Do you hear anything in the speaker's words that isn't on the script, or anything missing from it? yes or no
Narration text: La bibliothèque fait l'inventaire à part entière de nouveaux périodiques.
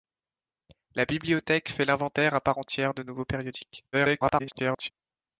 yes